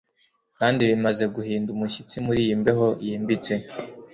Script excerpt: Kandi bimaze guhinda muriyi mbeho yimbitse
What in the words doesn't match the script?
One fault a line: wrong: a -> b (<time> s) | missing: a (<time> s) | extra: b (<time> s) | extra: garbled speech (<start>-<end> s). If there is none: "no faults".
extra: umushyitsi (1.7 s)